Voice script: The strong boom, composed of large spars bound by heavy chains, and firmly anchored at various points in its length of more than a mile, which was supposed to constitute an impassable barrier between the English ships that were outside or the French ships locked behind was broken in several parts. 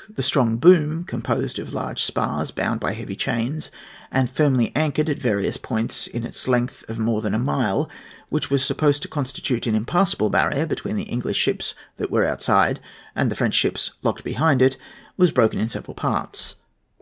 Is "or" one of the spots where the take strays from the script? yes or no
yes